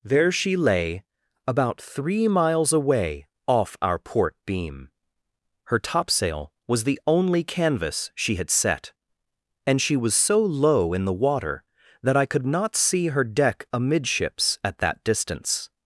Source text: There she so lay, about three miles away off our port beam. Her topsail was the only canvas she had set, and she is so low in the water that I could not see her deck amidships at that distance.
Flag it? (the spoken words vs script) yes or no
yes